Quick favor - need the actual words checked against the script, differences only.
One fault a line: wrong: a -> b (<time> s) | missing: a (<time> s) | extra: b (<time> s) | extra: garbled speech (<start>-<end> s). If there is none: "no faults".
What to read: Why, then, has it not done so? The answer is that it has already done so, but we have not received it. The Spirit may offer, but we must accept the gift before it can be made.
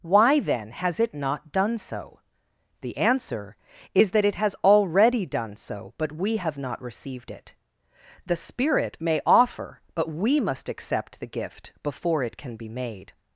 no faults